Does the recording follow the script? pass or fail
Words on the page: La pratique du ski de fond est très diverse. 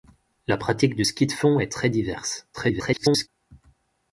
fail